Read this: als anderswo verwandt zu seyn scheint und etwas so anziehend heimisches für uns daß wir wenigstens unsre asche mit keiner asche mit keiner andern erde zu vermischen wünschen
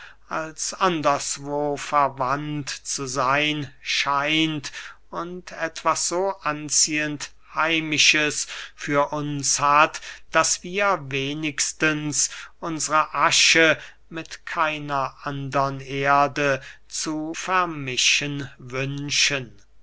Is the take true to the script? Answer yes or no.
no